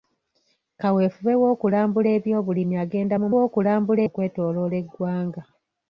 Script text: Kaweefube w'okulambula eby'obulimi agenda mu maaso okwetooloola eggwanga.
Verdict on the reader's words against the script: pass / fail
fail